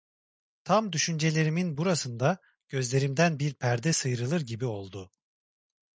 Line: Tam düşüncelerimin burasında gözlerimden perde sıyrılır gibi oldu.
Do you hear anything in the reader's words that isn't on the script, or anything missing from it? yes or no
yes